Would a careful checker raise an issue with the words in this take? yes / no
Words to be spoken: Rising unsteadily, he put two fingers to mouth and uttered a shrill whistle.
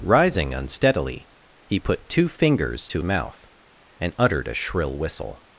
no